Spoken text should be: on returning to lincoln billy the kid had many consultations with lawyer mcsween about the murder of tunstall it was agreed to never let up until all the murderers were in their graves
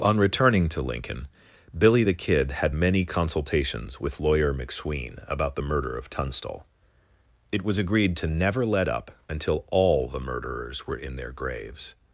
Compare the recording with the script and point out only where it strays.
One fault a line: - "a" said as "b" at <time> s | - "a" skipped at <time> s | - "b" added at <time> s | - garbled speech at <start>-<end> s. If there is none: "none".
none